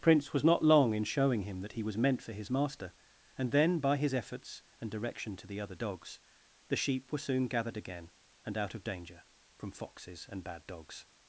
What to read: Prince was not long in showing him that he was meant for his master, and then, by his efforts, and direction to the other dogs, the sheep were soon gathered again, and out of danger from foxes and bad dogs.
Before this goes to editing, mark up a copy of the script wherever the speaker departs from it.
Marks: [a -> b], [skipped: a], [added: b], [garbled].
Prince was not long in showing him that he was meant for his master, and then, by his efforts, and direction to the other dogs, the sheep were soon gathered again, and out of danger from foxes and bad dogs.